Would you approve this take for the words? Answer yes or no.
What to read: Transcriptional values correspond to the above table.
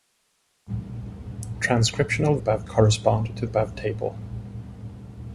no